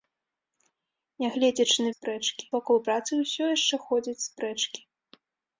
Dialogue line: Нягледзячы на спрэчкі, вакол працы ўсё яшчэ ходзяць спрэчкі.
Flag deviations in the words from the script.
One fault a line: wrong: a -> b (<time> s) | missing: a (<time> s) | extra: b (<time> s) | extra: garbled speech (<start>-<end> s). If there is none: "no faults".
no faults